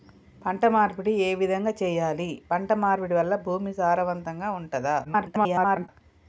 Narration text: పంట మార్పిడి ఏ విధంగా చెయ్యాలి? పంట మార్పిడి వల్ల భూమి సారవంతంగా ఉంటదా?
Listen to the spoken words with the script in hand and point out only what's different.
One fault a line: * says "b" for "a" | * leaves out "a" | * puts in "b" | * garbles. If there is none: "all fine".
* garbles